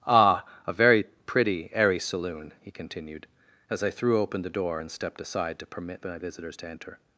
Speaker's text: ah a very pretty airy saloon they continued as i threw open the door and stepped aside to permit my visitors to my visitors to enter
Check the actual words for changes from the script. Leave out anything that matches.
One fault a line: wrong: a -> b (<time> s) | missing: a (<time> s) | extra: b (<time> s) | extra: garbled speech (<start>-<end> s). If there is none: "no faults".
wrong: they -> he (2.6 s)
missing: my visitors to (6.7 s)